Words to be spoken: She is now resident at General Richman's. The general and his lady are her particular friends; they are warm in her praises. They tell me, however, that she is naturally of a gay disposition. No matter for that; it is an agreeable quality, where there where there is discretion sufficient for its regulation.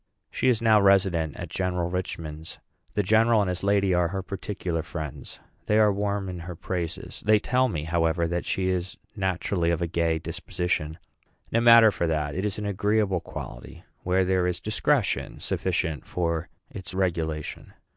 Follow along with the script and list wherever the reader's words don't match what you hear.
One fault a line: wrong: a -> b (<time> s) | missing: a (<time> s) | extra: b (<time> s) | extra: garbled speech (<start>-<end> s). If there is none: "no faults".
missing: where there (14.5 s)